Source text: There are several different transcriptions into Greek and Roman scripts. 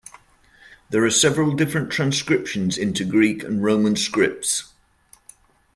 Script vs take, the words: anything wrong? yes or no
no